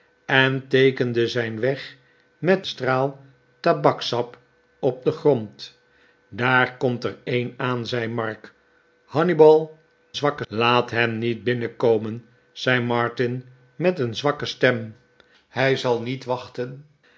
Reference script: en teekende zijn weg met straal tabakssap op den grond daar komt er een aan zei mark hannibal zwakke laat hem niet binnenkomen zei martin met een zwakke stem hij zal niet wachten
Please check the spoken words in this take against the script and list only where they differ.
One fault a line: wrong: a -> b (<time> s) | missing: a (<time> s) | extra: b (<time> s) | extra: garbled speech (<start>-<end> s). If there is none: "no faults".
no faults